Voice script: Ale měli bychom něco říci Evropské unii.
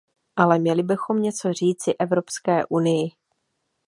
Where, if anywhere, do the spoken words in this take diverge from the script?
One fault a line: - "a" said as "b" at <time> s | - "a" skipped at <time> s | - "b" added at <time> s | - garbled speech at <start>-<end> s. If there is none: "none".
none